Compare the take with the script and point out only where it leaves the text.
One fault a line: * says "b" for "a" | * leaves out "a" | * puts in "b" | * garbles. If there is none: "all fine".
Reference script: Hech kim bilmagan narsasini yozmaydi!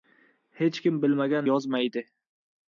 * leaves out "narsasini"